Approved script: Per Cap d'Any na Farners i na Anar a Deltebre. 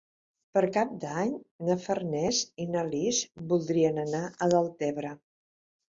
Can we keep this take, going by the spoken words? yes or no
no